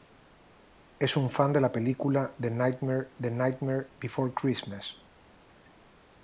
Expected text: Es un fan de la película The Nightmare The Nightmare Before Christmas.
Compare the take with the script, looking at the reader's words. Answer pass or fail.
pass